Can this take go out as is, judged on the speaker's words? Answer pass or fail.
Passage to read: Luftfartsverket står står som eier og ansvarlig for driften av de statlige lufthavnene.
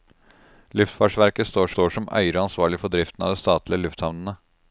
pass